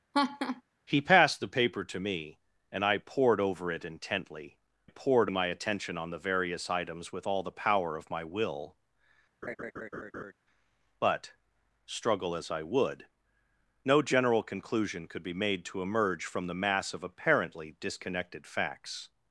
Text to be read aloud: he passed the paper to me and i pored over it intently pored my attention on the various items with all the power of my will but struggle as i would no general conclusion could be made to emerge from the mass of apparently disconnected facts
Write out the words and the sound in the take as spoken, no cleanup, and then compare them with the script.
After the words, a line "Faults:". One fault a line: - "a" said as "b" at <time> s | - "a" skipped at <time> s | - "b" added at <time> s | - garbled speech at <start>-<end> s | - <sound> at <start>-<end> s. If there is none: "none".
he passed the paper to me and i pored over it intently pored my attention on the various items with all the power of my will but struggle as i would no general conclusion could be made to emerge from the mass of apparently disconnected facts
Faults:
- laugh at 0.1-0.6 s
- laugh at 9.4-10.3 s